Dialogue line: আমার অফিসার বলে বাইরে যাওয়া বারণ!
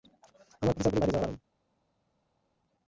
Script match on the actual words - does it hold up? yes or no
yes